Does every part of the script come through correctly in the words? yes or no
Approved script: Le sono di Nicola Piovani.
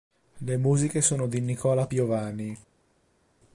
no